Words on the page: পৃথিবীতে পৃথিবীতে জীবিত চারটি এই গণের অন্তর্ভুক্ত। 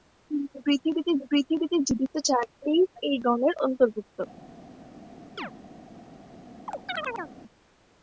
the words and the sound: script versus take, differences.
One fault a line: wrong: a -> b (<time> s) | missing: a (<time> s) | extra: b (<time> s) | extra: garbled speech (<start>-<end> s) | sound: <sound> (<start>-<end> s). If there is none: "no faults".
sound: chirp (5.4-5.5 s)
sound: chirp (6.7-7.3 s)